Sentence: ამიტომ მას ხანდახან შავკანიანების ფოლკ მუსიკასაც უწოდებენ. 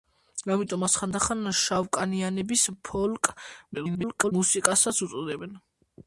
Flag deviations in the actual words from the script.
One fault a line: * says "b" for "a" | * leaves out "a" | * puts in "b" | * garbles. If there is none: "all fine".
* garbles